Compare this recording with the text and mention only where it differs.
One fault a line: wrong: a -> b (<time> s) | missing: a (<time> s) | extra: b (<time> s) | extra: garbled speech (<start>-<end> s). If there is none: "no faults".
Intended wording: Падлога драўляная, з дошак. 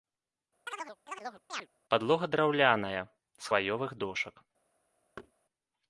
extra: хваёвых (3.5 s)